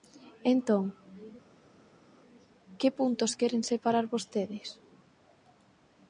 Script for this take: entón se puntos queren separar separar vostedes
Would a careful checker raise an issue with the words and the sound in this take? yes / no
yes